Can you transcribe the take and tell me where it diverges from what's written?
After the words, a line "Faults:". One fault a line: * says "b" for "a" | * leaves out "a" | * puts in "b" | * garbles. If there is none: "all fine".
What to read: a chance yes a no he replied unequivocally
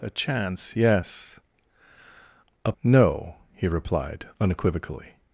a chance yes a no he replied unequivocally
Faults:
all fine